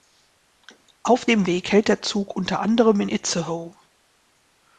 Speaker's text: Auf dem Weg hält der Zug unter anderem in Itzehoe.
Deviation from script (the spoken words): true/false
false